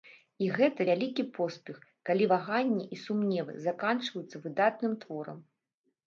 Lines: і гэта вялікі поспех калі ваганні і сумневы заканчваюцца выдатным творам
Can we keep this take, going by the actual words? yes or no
yes